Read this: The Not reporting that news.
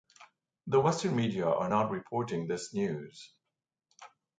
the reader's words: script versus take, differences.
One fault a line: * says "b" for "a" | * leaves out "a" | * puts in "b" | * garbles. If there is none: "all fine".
* puts in "Western media are"
* says "this" for "that"